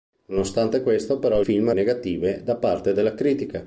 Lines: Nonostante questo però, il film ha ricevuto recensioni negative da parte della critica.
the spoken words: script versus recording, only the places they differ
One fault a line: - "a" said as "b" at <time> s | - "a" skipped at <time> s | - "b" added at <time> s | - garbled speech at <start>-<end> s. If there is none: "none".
- "il" skipped at 1.4 s
- "ricevuto recensioni" skipped at 1.7 s